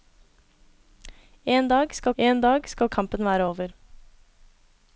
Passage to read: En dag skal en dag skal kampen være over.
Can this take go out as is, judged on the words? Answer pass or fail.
pass